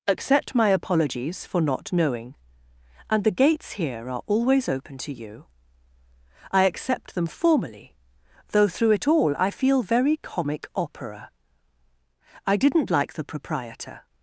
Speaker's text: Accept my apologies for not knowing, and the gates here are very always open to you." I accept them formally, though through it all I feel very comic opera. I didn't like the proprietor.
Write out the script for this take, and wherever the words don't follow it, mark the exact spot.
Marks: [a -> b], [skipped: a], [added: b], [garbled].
Accept my apologies for not knowing, and the gates here are [skipped: very] always open to you." I accept them formally, though through it all I feel very comic opera. I didn't like the proprietor.